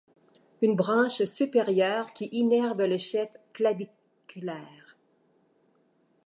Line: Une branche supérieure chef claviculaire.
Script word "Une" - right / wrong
right